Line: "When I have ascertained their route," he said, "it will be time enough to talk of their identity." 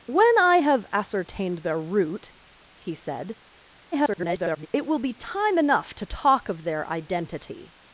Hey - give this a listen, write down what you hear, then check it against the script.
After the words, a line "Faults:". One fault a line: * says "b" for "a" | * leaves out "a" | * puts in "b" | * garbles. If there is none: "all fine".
"When I have ascertained their route," he said, [garbled] "it will be time enough to talk of their identity."
Faults:
* garbles